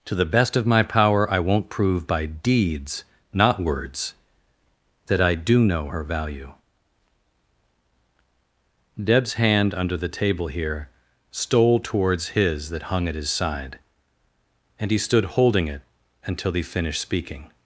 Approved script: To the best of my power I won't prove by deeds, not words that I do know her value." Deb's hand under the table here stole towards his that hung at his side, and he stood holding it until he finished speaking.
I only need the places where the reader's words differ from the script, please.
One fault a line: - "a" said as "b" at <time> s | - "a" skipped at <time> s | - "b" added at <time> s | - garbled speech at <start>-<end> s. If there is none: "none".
none